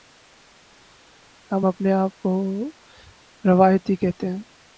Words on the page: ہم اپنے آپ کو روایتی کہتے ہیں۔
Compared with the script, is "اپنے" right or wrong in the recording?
right